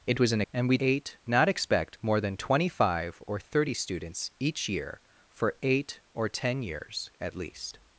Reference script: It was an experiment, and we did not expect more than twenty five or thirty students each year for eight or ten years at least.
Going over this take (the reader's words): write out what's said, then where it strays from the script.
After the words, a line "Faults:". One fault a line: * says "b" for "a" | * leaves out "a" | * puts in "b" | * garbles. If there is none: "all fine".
It was an and we eight not expect more than twenty five or thirty students each year for eight or ten years at least.
Faults:
* leaves out "experiment"
* says "eight" for "did"